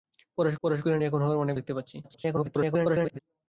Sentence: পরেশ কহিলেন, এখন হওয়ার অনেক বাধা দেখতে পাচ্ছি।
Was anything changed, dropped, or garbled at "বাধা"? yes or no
yes